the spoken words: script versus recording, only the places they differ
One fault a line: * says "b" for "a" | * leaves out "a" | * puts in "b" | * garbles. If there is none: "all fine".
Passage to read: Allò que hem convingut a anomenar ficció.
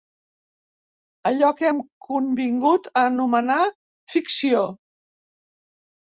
all fine